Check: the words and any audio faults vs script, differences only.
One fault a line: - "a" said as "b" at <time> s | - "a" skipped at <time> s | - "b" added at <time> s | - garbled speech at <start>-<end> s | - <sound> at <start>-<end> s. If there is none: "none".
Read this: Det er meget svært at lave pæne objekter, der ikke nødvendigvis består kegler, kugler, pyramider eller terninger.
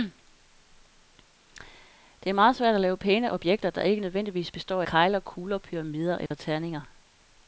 - dropout at 6.3-6.3 s